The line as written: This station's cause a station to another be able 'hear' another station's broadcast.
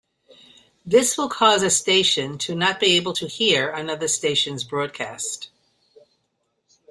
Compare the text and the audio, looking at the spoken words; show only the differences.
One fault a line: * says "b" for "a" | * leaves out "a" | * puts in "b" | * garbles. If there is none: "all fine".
* says "will" for "station's"
* says "not" for "another"
* puts in "to"